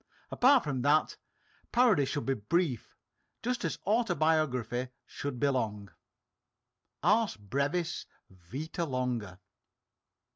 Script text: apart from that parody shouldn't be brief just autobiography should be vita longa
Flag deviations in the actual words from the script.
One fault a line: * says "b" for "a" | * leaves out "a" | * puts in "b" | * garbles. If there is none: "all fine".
* says "should" for "shouldn't"
* puts in "as"
* puts in "long ars brevis"